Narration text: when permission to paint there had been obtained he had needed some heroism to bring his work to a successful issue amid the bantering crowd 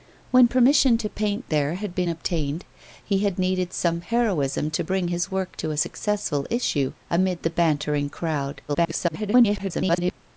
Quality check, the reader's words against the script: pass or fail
fail